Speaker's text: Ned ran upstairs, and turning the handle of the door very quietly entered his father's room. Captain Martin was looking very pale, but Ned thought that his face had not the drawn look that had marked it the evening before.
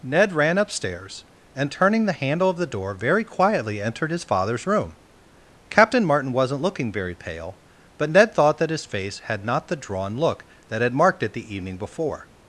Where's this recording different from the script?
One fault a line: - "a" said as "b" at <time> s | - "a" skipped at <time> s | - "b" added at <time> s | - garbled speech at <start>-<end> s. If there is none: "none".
- "was" said as "wasn't" at 6.3 s